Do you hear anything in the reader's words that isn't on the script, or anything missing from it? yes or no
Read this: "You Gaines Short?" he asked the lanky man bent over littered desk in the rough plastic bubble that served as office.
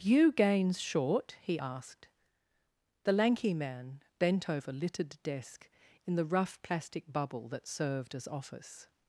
no